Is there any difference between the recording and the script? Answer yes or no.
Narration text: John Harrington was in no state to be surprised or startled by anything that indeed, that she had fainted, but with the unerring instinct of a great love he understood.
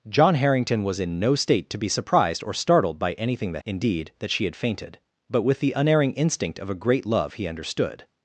no